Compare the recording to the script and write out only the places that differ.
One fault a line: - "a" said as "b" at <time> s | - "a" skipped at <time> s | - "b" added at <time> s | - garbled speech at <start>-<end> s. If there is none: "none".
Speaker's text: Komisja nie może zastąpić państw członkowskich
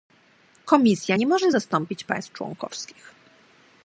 none